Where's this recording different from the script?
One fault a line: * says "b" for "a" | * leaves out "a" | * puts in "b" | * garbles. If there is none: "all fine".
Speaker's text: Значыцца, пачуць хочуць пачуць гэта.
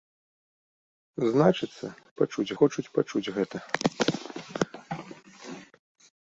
all fine